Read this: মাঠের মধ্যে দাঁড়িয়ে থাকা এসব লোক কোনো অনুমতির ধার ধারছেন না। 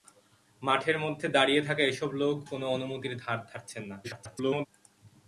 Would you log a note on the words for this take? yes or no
yes